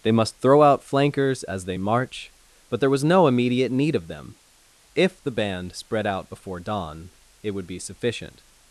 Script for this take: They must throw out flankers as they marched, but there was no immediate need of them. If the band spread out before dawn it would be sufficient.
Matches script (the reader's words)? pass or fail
fail